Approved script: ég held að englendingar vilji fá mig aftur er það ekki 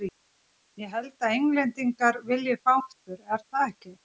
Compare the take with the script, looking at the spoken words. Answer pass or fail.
fail